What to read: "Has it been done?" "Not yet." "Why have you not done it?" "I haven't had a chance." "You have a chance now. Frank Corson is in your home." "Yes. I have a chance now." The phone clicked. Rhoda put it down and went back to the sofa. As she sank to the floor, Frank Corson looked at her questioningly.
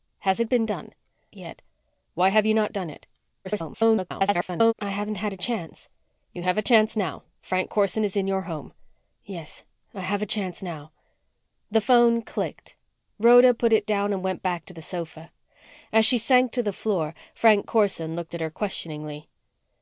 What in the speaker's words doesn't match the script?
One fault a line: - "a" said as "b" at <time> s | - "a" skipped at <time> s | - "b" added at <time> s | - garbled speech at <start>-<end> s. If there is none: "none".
- "Not" skipped at 0.9 s
- garbled speech at 3.4-4.7 s